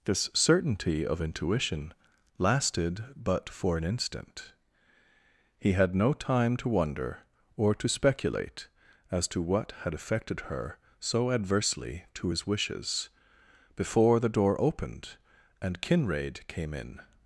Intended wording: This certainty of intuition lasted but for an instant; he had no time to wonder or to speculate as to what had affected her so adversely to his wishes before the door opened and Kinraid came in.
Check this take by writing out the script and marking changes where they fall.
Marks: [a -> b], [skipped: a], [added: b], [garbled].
This certainty of intuition lasted but for an instant; he had no time to wonder or to speculate as to what had affected her so adversely to his wishes before the door opened and Kinraid came in.